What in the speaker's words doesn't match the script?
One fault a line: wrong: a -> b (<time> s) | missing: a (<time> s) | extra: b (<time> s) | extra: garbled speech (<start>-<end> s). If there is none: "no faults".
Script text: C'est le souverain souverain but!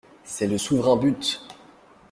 missing: souverain (1.0 s)